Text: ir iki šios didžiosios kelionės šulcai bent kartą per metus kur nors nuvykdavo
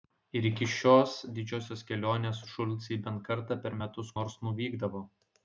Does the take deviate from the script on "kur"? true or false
true